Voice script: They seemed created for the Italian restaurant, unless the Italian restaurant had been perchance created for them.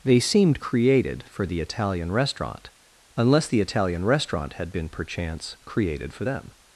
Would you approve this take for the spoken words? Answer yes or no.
yes